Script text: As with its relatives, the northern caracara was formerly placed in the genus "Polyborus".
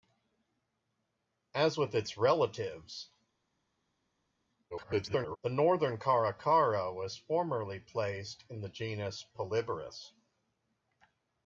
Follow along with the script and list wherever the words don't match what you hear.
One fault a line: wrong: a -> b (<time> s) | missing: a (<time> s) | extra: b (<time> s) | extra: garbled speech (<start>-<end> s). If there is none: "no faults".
extra: garbled speech (4.7-5.4 s)